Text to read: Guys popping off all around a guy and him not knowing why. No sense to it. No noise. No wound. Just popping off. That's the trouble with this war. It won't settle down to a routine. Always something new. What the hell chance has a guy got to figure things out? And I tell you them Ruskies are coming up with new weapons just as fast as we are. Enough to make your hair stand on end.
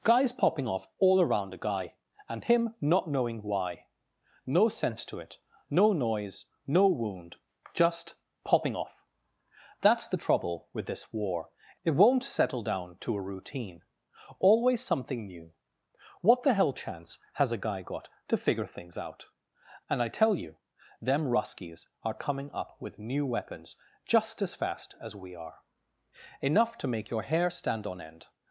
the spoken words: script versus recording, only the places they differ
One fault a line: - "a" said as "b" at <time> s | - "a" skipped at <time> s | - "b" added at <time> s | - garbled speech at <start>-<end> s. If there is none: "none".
none